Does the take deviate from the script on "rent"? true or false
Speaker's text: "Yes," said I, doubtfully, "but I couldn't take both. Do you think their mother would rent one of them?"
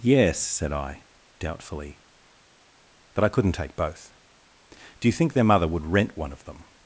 false